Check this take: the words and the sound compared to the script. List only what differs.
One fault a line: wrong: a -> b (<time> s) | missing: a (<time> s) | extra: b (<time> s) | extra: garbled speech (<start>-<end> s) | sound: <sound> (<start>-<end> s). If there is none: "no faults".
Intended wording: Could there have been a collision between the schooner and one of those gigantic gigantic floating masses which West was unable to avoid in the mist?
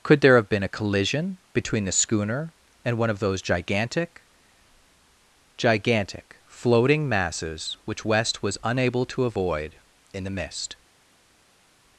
no faults